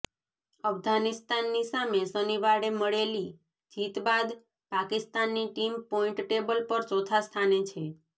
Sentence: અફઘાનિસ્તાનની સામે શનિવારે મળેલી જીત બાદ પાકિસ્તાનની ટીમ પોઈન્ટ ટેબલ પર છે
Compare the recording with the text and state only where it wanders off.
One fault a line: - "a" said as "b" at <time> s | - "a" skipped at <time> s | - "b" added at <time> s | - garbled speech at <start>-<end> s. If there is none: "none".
- "ચોથા સ્થાને" added at 6.9 s